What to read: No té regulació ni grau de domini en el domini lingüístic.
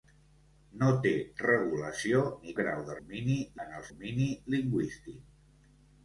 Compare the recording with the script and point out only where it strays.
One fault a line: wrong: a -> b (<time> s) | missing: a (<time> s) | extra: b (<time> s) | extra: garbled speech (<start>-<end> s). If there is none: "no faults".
no faults